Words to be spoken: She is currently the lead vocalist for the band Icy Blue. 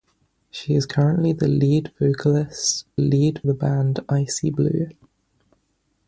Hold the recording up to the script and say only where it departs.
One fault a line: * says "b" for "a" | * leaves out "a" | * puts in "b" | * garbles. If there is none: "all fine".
* says "lead" for "for"